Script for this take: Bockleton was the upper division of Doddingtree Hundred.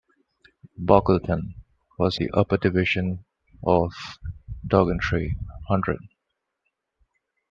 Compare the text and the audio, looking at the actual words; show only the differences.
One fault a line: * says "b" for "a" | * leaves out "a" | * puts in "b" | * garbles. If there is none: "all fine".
all fine